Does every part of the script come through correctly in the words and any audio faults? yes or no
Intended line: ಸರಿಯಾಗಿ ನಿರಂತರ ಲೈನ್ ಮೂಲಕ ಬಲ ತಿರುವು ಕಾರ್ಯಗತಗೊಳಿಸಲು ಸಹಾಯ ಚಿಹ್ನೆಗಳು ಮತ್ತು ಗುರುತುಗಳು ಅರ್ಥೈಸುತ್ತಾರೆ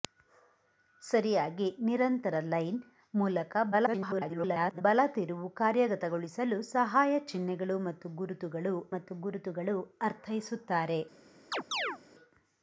no